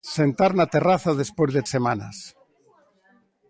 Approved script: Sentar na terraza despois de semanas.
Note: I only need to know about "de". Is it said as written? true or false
true